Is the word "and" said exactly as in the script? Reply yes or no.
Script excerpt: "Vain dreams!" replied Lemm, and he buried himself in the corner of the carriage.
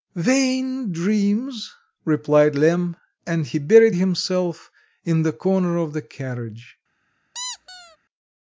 yes